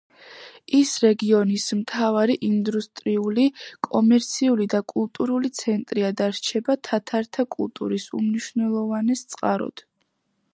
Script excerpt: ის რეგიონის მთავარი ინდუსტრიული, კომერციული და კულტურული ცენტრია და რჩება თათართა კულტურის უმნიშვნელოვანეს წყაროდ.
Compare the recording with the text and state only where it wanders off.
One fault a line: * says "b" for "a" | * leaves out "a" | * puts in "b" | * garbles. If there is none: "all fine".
all fine